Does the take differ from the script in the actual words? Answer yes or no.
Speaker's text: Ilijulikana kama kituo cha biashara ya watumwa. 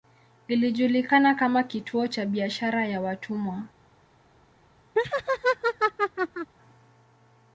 no